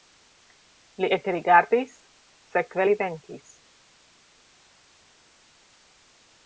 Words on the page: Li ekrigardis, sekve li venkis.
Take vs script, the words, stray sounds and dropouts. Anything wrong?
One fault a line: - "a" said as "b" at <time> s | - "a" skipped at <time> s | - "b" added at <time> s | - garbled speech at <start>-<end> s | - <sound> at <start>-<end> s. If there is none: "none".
none